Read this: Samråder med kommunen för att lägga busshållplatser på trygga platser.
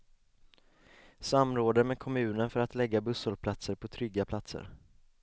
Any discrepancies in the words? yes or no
no